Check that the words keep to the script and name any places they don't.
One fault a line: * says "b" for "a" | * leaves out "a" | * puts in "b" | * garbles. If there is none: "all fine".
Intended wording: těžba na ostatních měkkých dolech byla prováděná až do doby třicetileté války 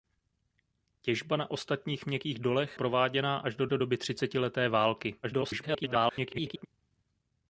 * leaves out "byla"
* puts in "do"
* garbles